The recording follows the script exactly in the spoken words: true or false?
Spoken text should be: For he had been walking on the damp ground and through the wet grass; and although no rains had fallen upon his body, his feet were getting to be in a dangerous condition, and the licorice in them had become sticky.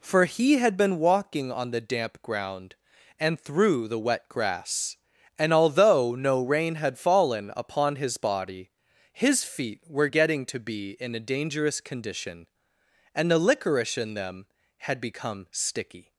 false